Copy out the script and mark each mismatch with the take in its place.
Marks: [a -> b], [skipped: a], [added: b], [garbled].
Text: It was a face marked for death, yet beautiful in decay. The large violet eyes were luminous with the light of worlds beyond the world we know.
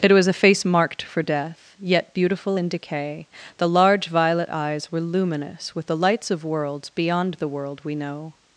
It was a face marked for death, yet beautiful in decay. The large violet eyes were luminous with the [light -> lights] of worlds beyond the world we know.